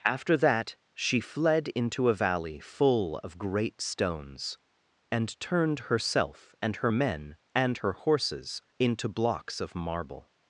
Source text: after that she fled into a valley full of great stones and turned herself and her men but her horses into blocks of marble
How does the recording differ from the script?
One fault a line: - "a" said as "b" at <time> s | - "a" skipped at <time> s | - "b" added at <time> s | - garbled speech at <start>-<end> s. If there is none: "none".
- "but" said as "and" at 7.5 s